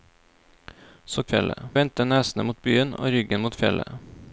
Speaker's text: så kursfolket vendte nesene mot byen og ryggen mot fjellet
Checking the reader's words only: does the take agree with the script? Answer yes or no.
no